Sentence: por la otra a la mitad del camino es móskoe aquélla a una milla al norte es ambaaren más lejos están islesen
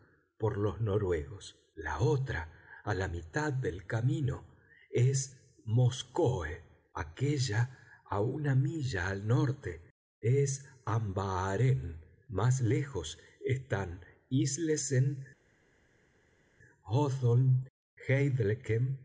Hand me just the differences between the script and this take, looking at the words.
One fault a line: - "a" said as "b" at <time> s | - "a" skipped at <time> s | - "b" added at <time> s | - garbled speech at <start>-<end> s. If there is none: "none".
- "los noruegos" added at 0.6 s